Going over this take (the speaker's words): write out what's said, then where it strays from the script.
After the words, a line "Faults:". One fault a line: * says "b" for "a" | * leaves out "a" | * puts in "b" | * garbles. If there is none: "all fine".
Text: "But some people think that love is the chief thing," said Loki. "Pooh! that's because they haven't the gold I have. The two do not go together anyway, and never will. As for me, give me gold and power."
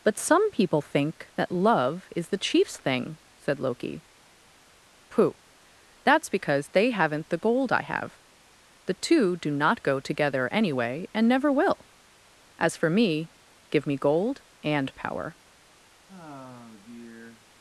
"But some people think that love is the chiefs thing," said Loki. "Pooh! that's because they haven't the gold I have. The two do not go together anyway, and never will. As for me, give me gold and power."
Faults:
* says "chiefs" for "chief"